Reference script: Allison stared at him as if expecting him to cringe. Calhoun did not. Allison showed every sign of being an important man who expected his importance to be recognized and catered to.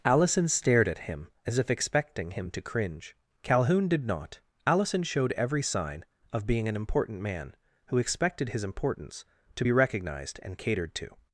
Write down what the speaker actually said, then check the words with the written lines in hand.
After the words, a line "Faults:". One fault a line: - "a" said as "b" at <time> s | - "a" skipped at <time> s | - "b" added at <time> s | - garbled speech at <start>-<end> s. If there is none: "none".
Allison stared at him as if expecting him to cringe. Calhoun did not. Allison showed every sign of being an important man who expected his importance to be recognized and catered to.
Faults:
none